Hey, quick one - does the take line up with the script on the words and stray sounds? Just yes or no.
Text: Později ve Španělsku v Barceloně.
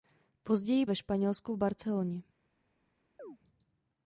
no